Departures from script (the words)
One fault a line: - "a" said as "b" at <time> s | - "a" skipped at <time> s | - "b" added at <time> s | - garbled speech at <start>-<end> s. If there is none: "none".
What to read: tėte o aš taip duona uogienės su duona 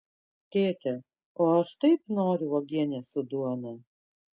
- "duona" said as "noriu" at 2.2 s